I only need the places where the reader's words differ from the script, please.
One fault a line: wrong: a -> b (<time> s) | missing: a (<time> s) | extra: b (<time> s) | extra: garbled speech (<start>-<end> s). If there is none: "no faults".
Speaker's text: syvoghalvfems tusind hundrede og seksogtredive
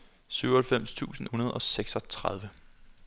no faults